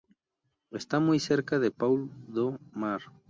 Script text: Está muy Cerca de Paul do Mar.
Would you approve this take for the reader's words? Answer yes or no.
yes